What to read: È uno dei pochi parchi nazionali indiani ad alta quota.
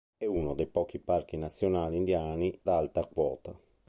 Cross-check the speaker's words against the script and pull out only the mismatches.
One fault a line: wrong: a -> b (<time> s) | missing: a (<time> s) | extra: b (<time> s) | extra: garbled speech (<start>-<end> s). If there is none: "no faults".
missing: ad (2.6 s)